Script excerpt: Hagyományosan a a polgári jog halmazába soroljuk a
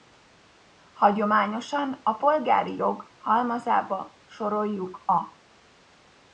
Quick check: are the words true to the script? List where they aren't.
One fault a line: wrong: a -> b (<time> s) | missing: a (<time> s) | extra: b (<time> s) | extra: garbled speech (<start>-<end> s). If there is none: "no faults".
missing: a (2.1 s)